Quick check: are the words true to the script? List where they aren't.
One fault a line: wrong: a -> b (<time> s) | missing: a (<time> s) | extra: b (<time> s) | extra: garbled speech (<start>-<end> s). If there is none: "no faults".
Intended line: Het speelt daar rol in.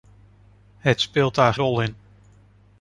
no faults